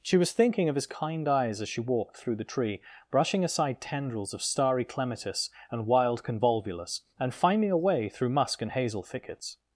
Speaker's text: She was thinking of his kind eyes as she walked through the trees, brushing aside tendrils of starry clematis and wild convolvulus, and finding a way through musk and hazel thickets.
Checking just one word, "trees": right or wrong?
wrong